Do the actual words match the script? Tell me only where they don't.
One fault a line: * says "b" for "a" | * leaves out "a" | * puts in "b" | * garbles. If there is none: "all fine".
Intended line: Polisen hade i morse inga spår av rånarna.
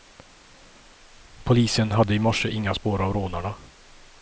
all fine